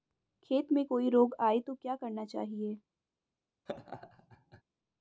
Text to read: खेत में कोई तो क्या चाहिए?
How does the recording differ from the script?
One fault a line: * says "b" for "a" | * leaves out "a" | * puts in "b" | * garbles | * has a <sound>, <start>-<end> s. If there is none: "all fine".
* puts in "रोग आये"
* puts in "करना"
* has a laugh, 3.7-4.6 s